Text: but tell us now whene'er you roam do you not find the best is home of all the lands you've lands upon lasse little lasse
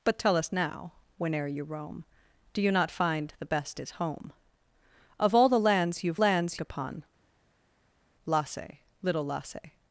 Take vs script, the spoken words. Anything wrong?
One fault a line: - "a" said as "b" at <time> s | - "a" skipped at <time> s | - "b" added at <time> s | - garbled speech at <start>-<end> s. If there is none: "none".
none